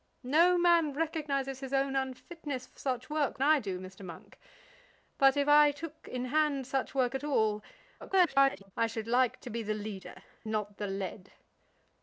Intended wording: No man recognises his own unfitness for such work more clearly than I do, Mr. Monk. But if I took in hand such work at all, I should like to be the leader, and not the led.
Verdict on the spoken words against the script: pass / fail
fail